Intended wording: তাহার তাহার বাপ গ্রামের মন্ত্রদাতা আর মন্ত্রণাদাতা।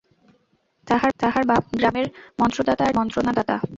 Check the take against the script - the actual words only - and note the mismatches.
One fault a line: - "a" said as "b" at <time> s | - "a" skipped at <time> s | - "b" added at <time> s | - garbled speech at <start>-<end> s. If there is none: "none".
none